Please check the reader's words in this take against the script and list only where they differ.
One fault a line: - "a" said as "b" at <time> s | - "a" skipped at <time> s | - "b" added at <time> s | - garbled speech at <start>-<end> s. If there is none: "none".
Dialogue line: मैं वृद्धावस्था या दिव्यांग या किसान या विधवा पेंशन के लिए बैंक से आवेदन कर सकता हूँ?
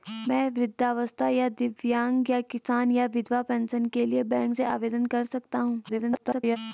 - garbled speech at 5.9-6.6 s